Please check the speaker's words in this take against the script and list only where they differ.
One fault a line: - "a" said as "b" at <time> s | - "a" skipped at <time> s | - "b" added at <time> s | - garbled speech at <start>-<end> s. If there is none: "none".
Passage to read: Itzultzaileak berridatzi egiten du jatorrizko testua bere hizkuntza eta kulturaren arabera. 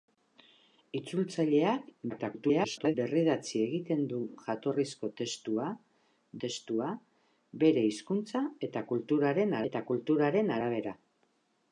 - garbled speech at 2.1-2.9 s
- "testua" added at 6.5 s
- "eta kulturaren" added at 9.7 s